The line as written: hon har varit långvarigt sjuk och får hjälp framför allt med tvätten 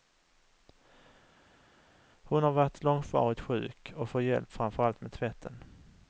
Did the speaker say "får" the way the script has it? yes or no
yes